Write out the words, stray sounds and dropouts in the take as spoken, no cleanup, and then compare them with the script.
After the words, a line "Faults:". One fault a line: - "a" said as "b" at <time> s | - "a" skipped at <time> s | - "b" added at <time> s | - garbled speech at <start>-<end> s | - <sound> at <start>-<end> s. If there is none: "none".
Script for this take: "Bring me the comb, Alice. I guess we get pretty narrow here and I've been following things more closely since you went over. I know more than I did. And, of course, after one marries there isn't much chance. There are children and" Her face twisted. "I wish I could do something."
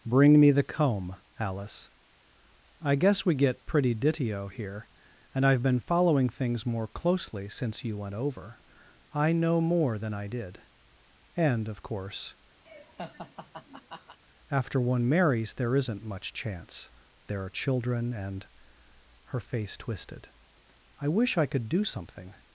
"Bring me the comb, Alice. I guess we get pretty ditio here and I've been following things more closely since you went over. I know more than I did. And, of course, after one marries there isn't much chance. There are children and" Her face twisted. "I wish I could do something."
Faults:
- "narrow" said as "ditio" at 3.9 s
- laugh at 12.7-14.2 s